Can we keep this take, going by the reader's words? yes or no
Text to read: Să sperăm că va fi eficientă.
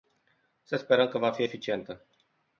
yes